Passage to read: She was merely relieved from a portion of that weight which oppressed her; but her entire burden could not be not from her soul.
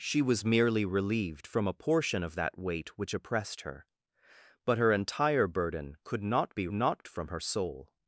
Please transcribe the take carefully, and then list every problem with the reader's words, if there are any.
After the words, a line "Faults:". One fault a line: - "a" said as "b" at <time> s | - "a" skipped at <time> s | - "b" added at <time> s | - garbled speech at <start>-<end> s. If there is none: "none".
She was merely relieved from a portion of that weight which oppressed her; but her entire burden could not be not from her soul.
Faults:
none